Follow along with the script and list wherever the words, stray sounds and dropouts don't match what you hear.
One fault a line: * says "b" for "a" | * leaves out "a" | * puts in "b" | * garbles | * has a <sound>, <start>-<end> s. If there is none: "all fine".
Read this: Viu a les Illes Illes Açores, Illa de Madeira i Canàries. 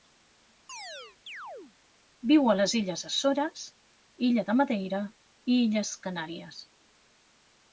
* has a chirp, 0.7-1.7 s
* leaves out "Illes"
* puts in "Illes"